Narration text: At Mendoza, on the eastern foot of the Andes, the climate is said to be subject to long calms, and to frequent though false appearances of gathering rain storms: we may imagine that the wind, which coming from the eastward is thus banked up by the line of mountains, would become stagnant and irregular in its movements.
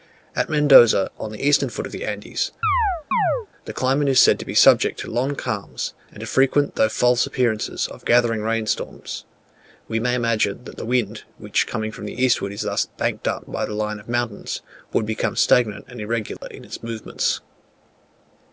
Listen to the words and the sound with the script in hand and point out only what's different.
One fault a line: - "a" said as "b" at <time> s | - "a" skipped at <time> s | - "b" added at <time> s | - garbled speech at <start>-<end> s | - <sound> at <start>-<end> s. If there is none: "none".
- chirp at 2.6-3.5 s
- dropout at 16.4-16.4 s